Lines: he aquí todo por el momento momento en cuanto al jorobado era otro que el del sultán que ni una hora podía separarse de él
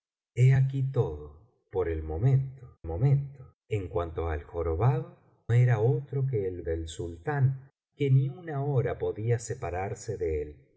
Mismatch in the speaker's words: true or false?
false